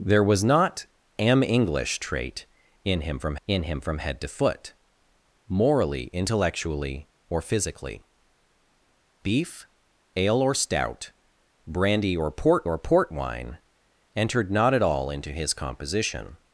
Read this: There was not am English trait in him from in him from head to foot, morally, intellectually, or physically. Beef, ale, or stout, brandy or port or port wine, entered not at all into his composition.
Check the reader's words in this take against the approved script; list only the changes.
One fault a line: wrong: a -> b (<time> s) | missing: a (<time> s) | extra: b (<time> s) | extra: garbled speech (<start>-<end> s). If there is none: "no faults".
no faults